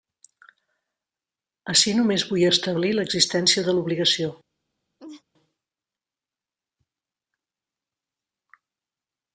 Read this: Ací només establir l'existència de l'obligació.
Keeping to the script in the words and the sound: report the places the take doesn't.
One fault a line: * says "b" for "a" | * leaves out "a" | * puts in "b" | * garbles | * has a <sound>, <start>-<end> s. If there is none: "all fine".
* puts in "vull"
* has a laugh, 5.0-5.2 s